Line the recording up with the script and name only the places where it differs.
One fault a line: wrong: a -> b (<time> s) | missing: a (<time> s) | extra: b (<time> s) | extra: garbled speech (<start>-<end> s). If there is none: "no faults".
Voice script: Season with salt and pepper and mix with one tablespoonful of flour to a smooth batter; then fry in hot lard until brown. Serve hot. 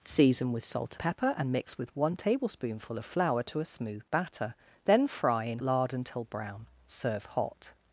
missing: and (0.9 s)
missing: hot (5.6 s)